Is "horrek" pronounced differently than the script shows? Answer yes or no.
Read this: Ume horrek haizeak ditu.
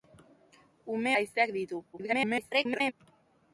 yes